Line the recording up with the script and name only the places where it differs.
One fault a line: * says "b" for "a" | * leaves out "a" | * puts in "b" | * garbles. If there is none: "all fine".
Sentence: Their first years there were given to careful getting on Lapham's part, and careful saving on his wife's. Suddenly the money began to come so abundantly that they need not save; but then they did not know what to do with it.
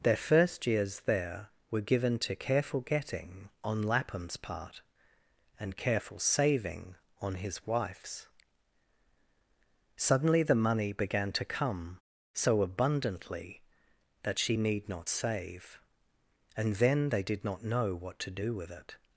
* says "she" for "they"
* says "and" for "but"